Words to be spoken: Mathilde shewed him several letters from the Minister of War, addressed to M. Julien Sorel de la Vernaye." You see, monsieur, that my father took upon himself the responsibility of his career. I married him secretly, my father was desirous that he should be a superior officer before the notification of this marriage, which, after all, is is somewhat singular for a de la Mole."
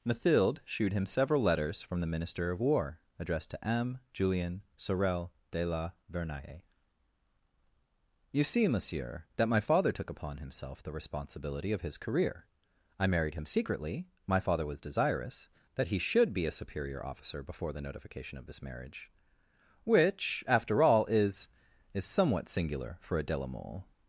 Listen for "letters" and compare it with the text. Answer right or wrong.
right